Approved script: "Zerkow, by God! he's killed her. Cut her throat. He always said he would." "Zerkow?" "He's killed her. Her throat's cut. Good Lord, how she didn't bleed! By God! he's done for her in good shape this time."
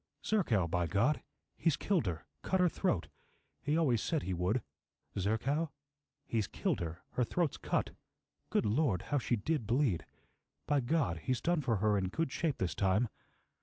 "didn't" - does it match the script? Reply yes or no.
no